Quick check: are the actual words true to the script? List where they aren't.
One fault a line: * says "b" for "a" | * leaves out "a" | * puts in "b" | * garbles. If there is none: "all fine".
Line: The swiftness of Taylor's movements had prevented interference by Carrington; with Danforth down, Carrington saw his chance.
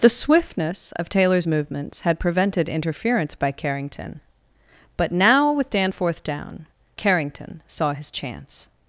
* puts in "but now"